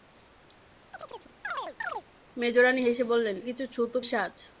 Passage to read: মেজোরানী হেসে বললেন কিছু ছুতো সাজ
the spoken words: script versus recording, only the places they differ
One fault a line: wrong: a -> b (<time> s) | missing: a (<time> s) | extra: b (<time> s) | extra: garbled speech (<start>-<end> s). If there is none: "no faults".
no faults